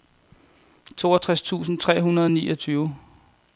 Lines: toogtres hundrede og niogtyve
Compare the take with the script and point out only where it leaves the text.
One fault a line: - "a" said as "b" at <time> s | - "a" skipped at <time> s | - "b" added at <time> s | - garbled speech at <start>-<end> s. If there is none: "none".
- "tusind tre" added at 1.4 s